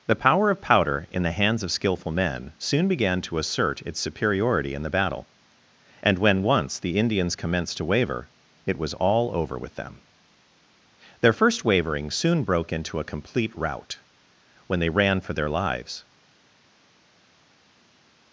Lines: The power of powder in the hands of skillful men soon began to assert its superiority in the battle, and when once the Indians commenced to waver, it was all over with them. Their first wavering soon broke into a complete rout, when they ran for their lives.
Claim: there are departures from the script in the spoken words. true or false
false